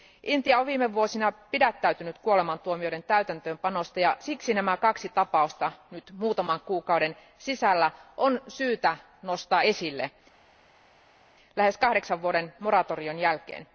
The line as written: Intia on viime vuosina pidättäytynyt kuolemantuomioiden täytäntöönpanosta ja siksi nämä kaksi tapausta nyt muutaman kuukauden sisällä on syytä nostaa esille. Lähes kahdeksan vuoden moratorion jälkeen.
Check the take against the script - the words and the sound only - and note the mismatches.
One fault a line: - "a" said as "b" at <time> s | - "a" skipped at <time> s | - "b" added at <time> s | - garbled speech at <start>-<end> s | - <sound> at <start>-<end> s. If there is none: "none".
none